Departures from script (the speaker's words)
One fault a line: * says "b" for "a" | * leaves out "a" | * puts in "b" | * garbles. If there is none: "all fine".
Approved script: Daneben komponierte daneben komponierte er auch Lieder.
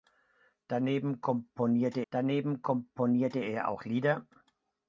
all fine